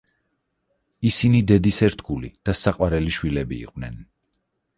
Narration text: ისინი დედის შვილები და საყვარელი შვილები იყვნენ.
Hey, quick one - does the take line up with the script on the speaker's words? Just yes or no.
no